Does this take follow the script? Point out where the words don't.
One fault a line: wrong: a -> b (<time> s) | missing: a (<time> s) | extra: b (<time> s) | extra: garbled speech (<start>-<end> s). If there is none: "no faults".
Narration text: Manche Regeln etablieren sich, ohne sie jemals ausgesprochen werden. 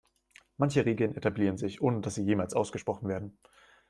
extra: dass (2.0 s)